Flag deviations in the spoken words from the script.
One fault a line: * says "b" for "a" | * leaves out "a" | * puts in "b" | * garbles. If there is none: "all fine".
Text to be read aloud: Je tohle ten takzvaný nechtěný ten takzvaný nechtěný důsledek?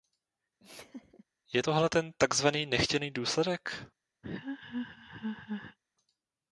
* leaves out "ten takzvaný nechtěný"